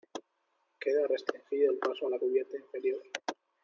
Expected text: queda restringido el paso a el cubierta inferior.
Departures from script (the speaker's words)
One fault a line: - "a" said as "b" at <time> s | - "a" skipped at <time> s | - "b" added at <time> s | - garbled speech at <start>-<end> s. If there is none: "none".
- "el" said as "la" at 2.1 s